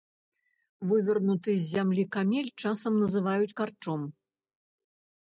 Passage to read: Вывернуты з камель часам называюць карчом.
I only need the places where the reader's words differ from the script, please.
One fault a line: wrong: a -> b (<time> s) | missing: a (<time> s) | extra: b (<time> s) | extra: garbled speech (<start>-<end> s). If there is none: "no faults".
extra: зямлі (1.7 s)